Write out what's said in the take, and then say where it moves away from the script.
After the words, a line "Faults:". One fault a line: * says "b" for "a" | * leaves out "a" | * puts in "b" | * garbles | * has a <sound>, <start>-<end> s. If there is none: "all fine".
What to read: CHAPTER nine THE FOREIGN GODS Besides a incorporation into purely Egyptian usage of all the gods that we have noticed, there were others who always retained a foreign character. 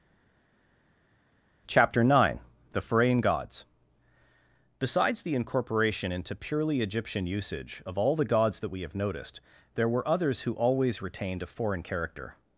CHAPTER nine THE FOREIGN GODS Besides the incorporation into purely Egyptian usage of all the gods that we have noticed, there were others who always retained a foreign character.
Faults:
* says "the" for "a"